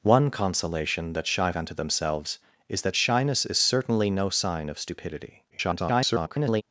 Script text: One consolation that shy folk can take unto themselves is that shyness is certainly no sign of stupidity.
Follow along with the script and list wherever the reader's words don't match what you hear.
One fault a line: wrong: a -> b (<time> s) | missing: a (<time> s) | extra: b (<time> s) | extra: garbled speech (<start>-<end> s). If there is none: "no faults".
missing: folk can take (1.5 s)
extra: garbled speech (5.5-6.6 s)